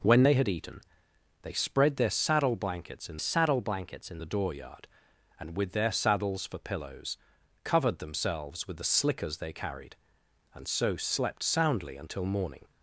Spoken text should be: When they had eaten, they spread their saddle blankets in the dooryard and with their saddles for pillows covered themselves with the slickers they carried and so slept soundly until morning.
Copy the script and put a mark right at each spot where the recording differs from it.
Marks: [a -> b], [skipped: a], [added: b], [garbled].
When they had eaten, they spread their saddle blankets in [added: saddle blankets in] the dooryard and with their saddles for pillows covered themselves with the slickers they carried and so slept soundly until morning.